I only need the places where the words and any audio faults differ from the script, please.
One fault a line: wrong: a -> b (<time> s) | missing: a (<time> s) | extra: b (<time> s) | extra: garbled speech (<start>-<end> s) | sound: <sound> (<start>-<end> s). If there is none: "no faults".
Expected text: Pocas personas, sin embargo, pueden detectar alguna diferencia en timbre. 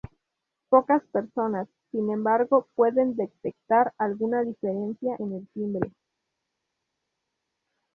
extra: el (5.3 s)